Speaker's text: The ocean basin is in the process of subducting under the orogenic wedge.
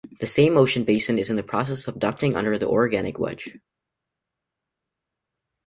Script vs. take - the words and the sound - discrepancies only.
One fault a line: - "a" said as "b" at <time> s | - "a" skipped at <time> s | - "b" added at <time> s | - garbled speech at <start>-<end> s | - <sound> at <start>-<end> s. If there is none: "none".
- "same" added at 0.2 s